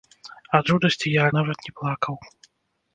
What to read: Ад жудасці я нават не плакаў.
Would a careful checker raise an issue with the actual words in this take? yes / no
no